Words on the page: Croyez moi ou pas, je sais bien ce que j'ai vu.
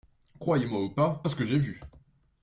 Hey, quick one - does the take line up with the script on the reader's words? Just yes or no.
no